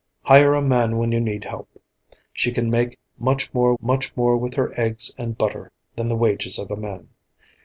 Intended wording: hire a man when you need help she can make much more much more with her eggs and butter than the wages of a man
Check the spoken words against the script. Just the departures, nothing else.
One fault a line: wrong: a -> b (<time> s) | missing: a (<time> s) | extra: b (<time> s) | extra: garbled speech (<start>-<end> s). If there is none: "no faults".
no faults